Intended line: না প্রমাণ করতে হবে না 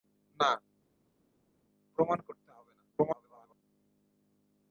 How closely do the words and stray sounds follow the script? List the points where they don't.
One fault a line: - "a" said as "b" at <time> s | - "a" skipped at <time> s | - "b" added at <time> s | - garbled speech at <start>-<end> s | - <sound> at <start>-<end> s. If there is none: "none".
- garbled speech at 2.9-3.6 s